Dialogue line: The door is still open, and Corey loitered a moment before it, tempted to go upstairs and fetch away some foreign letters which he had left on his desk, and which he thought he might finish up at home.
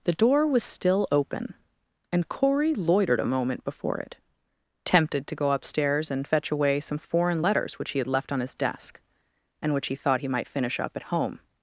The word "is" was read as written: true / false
false